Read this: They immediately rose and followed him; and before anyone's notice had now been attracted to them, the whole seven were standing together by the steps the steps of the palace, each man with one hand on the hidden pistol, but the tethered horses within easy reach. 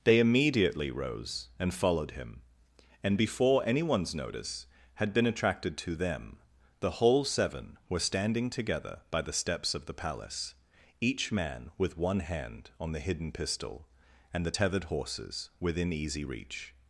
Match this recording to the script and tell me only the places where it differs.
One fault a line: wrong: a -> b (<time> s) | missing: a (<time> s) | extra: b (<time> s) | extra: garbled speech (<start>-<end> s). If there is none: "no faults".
missing: now (5.1 s)
missing: the steps (9.7 s)
wrong: but -> and (14.3 s)